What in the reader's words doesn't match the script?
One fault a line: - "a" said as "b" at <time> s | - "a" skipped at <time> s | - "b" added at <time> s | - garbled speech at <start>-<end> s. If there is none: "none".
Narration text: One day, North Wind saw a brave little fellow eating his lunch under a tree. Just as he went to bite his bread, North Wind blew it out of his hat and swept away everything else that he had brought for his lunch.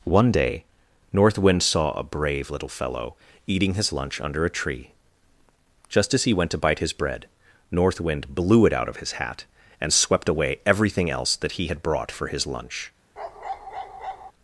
none